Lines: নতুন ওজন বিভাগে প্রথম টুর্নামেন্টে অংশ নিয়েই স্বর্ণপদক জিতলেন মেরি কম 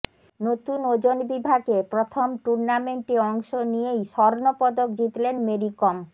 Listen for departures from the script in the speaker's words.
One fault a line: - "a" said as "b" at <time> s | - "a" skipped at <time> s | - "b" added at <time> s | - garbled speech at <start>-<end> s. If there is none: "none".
none